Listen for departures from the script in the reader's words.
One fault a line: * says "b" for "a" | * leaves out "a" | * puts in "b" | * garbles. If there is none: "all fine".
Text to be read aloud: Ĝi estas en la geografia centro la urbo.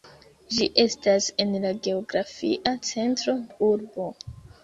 all fine